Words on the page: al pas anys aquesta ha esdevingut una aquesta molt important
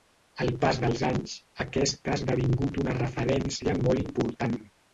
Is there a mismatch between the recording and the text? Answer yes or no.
yes